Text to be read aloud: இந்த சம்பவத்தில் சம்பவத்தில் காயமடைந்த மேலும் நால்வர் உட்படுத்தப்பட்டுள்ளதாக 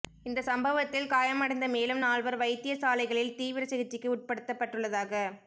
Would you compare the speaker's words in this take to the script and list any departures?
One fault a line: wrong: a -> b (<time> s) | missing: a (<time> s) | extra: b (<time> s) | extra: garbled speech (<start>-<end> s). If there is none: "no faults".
missing: சம்பவத்தில் (1.1 s)
extra: வைத்தியசாலைகளில் தீவிர சிகிச்சைக்கு (2.4 s)